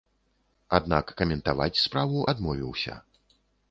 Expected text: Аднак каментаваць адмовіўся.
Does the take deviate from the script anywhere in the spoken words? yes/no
yes